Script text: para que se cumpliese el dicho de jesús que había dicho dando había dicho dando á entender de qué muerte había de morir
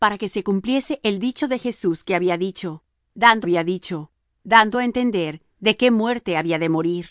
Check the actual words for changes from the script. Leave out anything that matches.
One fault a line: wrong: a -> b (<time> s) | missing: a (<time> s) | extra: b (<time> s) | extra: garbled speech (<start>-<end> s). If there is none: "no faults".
no faults